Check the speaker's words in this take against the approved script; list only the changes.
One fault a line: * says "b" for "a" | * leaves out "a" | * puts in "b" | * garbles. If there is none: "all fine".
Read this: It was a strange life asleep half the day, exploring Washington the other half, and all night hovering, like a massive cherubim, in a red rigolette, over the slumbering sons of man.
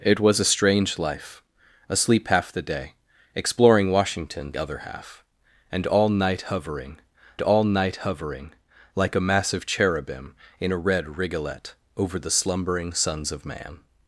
* leaves out "the"
* puts in "all night hovering"